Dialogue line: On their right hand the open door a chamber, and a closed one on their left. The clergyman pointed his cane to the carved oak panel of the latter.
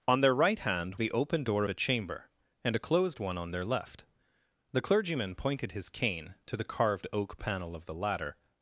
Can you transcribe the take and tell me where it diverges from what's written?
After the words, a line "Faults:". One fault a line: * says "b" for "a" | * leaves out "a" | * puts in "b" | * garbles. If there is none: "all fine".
On their right hand the open door a chamber, and a closed one on their left. The clergyman pointed his cane to the carved oak panel of the latter.
Faults:
all fine